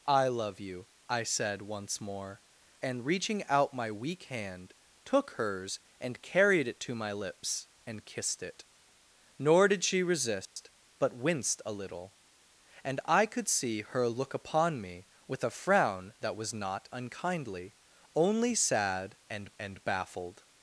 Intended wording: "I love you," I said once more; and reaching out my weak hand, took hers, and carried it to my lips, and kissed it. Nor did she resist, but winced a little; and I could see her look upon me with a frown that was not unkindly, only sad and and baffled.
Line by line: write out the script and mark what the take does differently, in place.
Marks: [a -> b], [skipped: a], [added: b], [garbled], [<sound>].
"I love you," I said once more; and reaching out my weak hand, took hers, and carried it to my lips, and kissed it. Nor did she resist, [dropout] but winced a little; and I could see her look upon me with a frown that was not unkindly, only sad and and baffled.